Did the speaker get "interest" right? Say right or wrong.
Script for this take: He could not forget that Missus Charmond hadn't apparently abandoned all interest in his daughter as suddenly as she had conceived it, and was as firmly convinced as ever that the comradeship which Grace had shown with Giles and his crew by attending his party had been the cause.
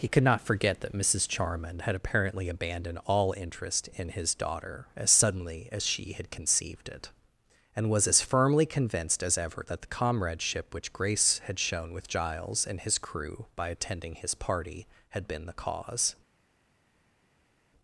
right